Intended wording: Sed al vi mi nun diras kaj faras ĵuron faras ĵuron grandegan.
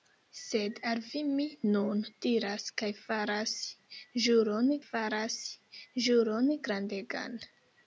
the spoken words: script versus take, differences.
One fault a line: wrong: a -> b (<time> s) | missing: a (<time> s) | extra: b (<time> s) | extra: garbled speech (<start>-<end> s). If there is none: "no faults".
no faults